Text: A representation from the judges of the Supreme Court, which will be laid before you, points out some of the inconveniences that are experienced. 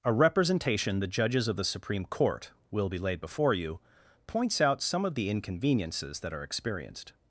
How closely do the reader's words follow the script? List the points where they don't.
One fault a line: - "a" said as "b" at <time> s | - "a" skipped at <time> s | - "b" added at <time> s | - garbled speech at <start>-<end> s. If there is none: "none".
- "from" skipped at 1.0 s
- "which" skipped at 2.5 s